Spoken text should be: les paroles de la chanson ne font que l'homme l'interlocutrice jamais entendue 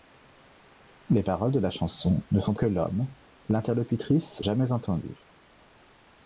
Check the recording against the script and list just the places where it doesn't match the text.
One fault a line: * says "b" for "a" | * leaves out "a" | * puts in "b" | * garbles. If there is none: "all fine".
all fine